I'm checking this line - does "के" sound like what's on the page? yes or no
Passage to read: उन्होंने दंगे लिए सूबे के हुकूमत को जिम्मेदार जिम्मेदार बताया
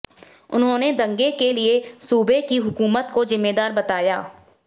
no